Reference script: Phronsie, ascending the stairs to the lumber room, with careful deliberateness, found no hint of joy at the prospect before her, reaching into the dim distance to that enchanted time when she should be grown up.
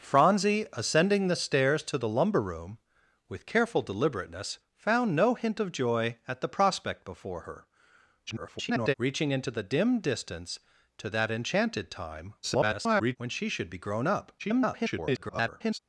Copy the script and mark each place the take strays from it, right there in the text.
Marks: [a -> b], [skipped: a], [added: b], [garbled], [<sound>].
Phronsie, ascending the stairs to the lumber room, with careful deliberateness, found no hint of joy at the prospect before her, [garbled] reaching into the dim distance to that enchanted time [garbled] when she should be grown up. [garbled]